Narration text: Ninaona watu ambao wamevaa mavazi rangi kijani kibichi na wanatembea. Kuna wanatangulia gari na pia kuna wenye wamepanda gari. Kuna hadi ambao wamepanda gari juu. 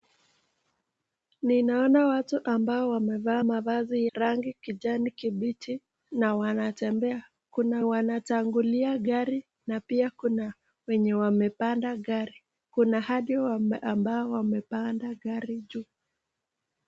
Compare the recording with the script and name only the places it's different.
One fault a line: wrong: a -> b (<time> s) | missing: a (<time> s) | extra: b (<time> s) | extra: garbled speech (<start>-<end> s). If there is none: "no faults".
no faults